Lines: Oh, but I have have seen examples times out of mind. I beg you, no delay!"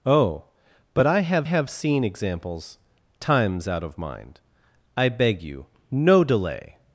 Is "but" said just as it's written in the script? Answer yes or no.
yes